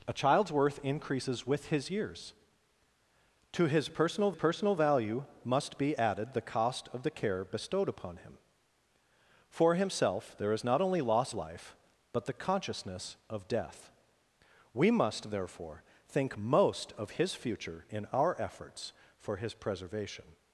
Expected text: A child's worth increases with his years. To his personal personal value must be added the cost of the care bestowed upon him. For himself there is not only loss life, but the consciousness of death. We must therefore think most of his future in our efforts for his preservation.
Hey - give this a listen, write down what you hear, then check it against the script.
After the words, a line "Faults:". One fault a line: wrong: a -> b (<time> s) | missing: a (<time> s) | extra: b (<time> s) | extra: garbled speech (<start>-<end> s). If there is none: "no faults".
A child's worth increases with his years. To his personal personal value must be added the cost of the care bestowed upon him. For himself there is not only loss life, but the consciousness of death. We must therefore think most of his future in our efforts for his preservation.
Faults:
no faults